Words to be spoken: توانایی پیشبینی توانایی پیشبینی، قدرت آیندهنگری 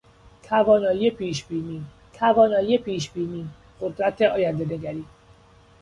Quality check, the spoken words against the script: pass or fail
pass